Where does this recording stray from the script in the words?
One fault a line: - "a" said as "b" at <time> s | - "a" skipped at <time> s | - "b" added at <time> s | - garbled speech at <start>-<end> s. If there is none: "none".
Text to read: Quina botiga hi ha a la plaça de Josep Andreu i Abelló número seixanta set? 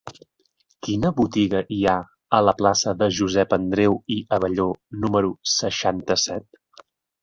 none